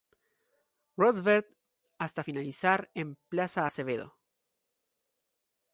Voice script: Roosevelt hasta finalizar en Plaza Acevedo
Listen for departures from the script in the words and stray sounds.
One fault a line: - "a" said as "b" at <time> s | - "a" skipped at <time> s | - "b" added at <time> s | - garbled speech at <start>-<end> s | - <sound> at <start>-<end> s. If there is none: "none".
none